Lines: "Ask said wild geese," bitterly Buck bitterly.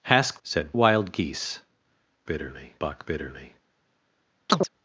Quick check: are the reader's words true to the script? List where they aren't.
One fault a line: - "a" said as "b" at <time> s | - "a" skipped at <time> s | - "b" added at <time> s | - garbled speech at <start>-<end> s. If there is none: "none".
none